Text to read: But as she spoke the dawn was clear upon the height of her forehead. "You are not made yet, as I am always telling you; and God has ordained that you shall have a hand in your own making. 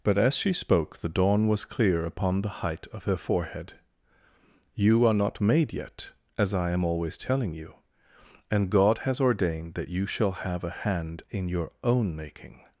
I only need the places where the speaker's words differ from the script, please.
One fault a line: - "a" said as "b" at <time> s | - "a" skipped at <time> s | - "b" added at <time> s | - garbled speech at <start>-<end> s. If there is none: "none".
none